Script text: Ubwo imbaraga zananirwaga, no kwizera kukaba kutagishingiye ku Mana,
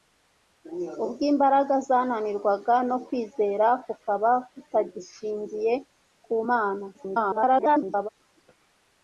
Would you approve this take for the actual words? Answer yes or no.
no